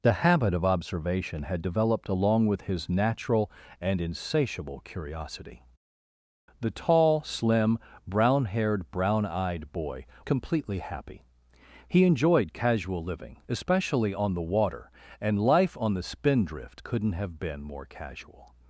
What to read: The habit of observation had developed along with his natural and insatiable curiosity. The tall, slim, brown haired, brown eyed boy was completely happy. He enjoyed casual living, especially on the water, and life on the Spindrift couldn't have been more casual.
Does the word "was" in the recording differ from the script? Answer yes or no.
yes